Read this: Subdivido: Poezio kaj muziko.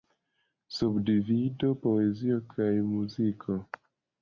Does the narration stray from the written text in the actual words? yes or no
no